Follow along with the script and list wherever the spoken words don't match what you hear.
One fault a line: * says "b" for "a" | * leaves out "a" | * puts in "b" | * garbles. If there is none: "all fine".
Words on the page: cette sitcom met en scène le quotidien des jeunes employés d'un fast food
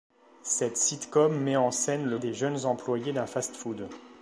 * leaves out "quotidien"